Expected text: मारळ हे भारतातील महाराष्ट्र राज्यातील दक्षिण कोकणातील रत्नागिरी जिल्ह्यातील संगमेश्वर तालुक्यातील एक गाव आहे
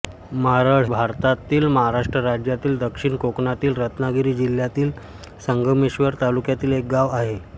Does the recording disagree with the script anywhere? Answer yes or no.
yes